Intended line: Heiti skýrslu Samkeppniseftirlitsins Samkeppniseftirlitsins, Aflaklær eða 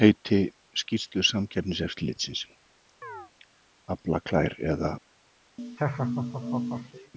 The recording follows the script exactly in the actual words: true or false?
false